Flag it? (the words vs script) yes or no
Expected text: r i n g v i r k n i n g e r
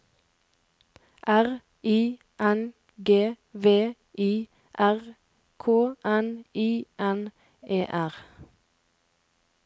yes